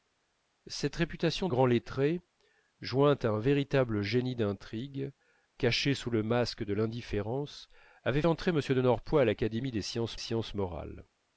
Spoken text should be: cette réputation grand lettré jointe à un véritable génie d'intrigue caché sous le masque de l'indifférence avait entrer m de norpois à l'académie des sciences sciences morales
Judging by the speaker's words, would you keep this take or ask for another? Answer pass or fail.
pass